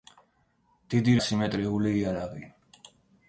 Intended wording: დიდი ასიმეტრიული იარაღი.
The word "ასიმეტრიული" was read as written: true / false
true